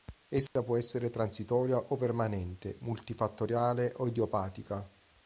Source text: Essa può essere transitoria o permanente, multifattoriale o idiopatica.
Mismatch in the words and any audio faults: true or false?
true